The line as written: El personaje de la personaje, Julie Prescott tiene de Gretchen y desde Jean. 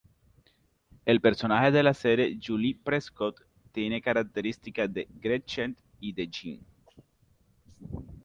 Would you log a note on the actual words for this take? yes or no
yes